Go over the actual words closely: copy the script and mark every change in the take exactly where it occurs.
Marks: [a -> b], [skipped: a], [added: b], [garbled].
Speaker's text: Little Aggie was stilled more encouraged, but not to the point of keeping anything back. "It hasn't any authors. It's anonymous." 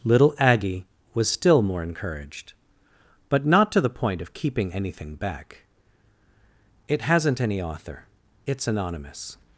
Little Aggie was [stilled -> still] more encouraged, but not to the point of keeping anything back. "It hasn't any [authors. -> author] It's anonymous."